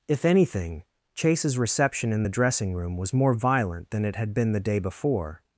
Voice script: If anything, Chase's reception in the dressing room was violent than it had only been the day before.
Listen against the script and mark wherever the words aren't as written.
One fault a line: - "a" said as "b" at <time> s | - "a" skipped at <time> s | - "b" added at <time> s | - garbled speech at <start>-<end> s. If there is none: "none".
- "more" added at 3.1 s
- "only" skipped at 4.3 s